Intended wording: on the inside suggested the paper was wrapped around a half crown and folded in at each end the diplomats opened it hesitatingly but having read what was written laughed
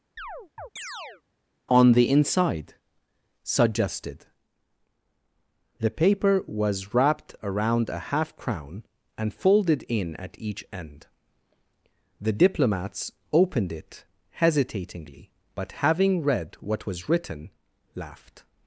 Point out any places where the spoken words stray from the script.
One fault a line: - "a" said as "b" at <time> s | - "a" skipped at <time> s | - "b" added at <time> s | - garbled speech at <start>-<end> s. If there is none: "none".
none